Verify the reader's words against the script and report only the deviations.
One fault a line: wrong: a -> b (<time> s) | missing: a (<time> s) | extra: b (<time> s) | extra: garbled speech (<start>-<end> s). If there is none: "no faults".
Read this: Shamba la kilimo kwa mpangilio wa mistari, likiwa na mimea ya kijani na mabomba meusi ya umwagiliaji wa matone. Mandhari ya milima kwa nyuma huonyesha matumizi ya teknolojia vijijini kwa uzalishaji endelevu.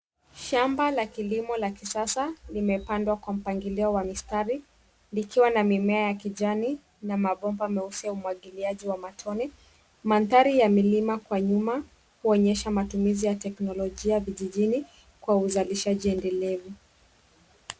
extra: la kisasa limepandwa (1.6 s)